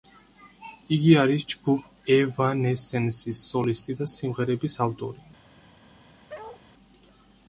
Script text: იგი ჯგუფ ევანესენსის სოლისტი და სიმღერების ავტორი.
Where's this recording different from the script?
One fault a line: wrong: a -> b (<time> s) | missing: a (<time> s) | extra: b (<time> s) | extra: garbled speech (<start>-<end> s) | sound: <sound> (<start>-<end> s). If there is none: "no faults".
extra: არის (1.2 s)
sound: bark (6.3-6.6 s)